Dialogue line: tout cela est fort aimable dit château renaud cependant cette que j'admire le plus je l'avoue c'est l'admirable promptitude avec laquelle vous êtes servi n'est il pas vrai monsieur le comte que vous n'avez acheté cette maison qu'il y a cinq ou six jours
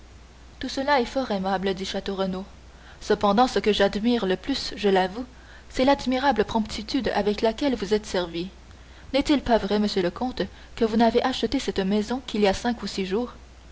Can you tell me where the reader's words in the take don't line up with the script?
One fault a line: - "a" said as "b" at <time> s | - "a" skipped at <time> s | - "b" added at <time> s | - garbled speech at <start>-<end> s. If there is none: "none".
- "cette" said as "ce" at 3.5 s